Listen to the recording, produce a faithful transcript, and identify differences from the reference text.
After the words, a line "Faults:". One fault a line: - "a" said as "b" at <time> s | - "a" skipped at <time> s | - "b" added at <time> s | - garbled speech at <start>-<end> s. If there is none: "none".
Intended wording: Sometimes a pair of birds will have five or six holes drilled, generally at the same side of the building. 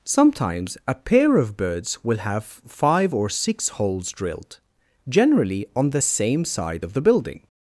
Sometimes a pair of birds will have five or six holes drilled, generally on the same side of the building.
Faults:
- "at" said as "on" at 5.8 s